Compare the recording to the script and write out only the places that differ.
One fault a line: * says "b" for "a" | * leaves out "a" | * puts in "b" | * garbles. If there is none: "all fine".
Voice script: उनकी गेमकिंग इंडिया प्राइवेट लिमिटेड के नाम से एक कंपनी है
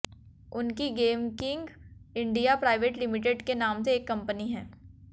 all fine